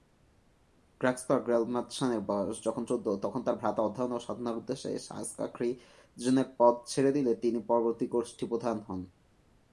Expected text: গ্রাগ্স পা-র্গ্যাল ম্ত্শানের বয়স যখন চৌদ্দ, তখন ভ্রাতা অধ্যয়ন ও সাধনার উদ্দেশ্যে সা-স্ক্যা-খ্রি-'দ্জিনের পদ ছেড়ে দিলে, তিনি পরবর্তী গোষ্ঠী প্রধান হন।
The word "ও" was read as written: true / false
true